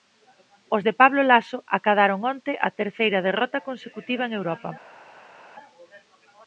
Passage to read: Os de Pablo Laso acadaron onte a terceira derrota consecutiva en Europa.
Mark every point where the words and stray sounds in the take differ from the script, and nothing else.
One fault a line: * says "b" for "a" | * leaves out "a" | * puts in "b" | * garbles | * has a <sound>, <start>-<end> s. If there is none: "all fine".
all fine